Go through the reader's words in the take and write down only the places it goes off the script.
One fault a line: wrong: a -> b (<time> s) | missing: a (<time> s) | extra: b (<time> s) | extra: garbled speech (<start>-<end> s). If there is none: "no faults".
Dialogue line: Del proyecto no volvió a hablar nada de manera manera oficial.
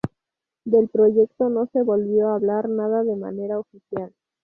extra: se (1.7 s)
missing: manera (3.6 s)